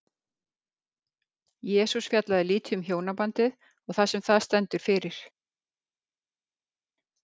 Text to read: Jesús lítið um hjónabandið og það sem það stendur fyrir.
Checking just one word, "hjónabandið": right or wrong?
right